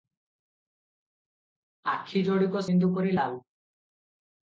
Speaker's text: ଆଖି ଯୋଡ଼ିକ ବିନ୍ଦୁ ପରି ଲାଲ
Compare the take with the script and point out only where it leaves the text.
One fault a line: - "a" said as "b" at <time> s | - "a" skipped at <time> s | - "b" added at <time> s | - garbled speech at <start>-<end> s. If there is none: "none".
none